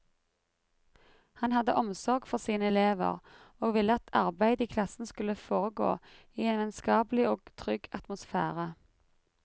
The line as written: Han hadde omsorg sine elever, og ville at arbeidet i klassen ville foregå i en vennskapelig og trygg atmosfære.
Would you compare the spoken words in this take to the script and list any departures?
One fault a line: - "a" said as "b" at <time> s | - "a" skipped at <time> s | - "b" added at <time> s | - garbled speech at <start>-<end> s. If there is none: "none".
- "for" added at 2.3 s
- "ville" said as "skulle" at 5.1 s